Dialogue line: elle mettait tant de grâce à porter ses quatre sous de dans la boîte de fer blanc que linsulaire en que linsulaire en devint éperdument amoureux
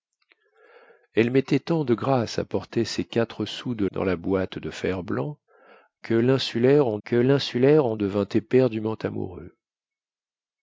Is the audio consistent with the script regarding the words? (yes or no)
yes